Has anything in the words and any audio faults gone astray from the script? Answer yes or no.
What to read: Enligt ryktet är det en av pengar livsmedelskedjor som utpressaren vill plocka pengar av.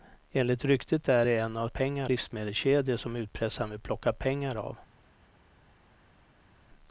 no